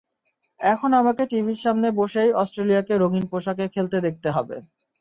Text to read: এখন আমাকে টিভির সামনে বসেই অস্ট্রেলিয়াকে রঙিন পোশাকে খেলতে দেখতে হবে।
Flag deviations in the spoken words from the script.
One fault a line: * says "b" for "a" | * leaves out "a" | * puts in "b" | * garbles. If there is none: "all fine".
all fine